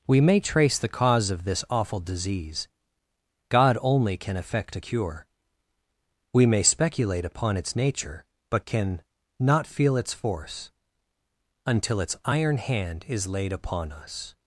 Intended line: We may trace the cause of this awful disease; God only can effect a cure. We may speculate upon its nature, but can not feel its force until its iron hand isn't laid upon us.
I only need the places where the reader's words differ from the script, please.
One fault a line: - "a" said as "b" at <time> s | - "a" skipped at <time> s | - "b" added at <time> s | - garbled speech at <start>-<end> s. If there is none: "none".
- "isn't" said as "is" at 13.1 s